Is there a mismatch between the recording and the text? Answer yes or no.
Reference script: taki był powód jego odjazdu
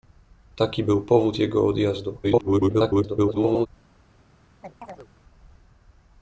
yes